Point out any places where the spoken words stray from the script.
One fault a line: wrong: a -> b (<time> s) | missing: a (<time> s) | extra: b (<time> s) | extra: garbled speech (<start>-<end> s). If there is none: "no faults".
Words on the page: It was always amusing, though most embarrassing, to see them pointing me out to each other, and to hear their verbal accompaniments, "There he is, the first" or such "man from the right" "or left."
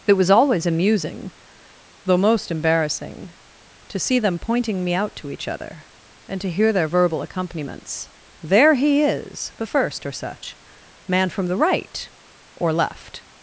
no faults